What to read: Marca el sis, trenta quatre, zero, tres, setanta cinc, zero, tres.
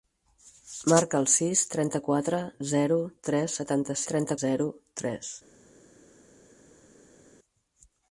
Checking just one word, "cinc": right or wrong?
wrong